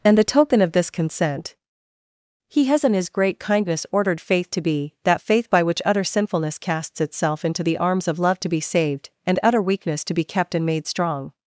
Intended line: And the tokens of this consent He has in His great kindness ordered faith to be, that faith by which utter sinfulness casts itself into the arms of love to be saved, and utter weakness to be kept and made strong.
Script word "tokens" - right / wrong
wrong